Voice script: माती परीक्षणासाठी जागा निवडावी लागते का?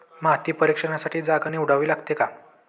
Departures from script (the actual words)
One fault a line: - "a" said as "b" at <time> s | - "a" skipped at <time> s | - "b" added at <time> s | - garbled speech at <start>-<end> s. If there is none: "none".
none